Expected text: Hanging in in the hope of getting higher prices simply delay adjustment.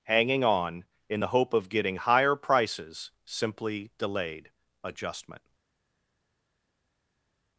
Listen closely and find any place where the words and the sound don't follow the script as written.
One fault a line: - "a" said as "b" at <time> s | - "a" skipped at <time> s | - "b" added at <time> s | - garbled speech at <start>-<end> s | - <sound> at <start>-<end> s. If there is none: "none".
- "in" said as "on" at 0.4 s
- "delay" said as "delayed" at 4.0 s